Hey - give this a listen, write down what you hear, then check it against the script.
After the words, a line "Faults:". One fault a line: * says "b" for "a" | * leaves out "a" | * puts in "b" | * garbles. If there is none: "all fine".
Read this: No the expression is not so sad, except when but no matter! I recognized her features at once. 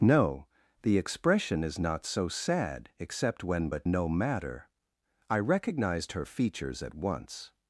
No the expression is not so sad, except when but no matter! I recognized her features at once.
Faults:
all fine